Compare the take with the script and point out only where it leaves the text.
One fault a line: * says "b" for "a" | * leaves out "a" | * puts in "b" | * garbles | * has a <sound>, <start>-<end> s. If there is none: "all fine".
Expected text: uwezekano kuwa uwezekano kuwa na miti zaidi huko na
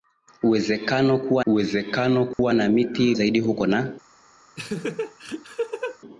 * has a dropout, 2.3-2.4 s
* has a laugh, 4.6-6.0 s